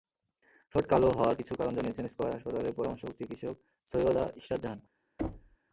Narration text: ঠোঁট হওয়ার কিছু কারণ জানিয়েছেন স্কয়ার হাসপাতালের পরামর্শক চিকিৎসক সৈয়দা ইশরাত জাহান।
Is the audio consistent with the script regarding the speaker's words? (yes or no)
no